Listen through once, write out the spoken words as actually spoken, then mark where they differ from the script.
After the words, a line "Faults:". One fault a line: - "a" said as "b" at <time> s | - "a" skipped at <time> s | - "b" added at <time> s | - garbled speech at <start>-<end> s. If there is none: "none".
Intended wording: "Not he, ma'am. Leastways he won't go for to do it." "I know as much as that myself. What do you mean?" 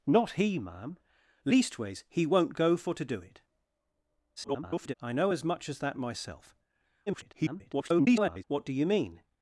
"Not he, ma'am. Leastways he won't go for to do it." [garbled] "I know as much as that myself. [garbled] What do you mean?"
Faults:
- garbled speech at 4.4-4.9 s
- garbled speech at 7.1-8.4 s